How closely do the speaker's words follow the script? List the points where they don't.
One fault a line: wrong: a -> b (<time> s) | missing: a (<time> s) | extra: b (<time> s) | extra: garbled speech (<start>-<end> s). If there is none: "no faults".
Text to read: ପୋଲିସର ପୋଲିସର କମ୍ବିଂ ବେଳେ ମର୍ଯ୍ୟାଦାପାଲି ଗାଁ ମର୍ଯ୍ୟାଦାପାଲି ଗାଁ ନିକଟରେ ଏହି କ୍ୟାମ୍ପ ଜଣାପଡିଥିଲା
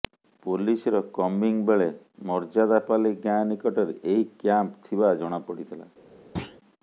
missing: ପୋଲିସର (1.0 s)
missing: ମର୍ଯ୍ୟାଦାପାଲି ଗାଁ (3.4 s)
extra: ଥିବା (4.9 s)